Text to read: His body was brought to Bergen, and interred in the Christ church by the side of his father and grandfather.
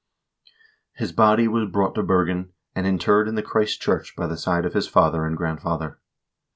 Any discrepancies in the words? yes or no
no